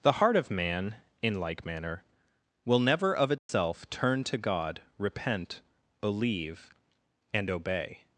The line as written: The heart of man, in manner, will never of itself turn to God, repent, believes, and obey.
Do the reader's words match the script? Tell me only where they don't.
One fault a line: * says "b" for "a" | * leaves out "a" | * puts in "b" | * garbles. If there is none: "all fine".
* puts in "like"
* says "believe" for "believes"